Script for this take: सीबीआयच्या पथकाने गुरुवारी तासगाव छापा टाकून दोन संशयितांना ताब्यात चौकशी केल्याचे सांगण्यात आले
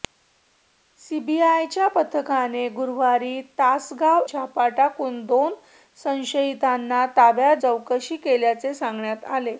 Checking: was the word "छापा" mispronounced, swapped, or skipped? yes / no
no